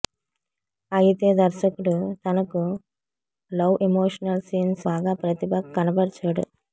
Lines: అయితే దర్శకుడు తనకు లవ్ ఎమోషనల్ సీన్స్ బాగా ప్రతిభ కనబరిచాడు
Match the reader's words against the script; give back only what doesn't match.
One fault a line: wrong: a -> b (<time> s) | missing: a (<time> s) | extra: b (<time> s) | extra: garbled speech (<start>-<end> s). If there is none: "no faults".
no faults